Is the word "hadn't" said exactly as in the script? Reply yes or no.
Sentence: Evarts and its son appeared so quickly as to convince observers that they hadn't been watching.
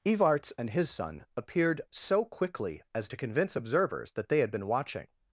no